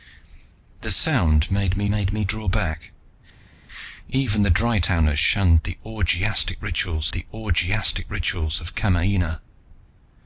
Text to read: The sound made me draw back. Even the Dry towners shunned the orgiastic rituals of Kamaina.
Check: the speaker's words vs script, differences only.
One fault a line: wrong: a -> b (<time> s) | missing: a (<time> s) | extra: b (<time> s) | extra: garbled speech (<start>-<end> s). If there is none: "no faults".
extra: made me (1.9 s)
extra: the orgiastic rituals (7.1 s)